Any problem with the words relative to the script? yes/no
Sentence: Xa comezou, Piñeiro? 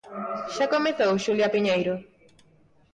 yes